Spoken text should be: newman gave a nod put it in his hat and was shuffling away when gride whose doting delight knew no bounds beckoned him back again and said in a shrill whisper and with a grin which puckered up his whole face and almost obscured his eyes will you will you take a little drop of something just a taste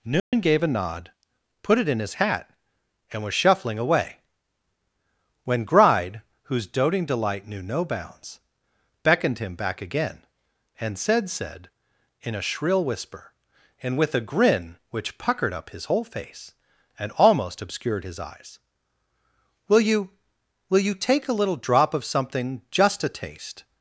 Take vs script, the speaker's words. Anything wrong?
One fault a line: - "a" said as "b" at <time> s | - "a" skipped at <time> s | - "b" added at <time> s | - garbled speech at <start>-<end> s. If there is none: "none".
- "said" added at 11.3 s